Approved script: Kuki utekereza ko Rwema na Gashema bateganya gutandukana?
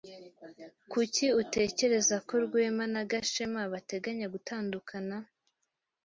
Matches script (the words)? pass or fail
pass